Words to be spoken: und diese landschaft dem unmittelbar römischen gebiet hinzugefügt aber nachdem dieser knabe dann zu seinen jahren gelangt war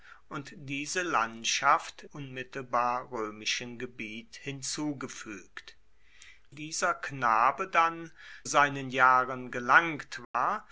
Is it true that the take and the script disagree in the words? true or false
true